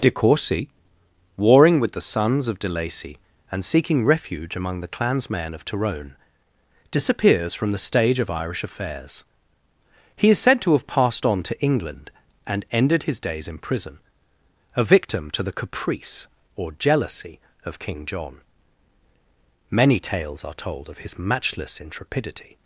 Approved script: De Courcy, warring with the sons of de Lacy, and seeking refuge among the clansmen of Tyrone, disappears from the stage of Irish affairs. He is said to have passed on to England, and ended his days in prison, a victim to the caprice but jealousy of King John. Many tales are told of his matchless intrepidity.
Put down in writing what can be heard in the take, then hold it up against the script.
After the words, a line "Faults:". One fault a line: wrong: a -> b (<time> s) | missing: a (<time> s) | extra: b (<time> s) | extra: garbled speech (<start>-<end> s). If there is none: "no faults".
De Courcy, warring with the sons of de Lacy, and seeking refuge among the clansmen of Tyrone, disappears from the stage of Irish affairs. He is said to have passed on to England, and ended his days in prison, a victim to the caprice or jealousy of King John. Many tales are told of his matchless intrepidity.
Faults:
wrong: but -> or (16.6 s)